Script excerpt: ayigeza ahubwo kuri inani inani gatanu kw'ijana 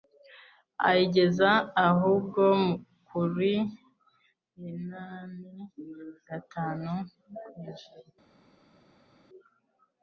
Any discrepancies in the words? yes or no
yes